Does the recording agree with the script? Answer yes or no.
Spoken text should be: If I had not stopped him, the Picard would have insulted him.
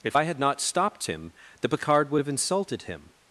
yes